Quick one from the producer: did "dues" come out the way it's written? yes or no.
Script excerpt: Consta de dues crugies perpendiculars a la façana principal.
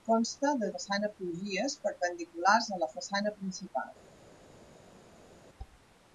no